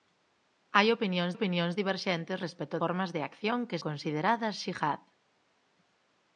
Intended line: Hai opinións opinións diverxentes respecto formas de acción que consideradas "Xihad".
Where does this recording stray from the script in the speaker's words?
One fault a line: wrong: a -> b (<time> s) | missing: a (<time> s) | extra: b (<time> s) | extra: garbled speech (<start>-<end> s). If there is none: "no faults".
no faults